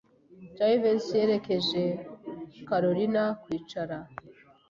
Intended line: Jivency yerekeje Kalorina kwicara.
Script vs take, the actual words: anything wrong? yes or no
no